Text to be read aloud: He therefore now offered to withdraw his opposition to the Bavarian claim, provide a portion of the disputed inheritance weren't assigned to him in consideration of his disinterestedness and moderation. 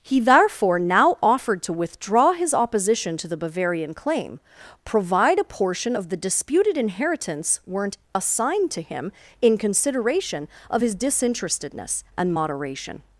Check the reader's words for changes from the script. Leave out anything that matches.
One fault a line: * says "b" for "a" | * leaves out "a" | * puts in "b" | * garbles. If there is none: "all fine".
all fine